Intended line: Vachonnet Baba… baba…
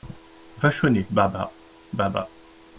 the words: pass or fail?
pass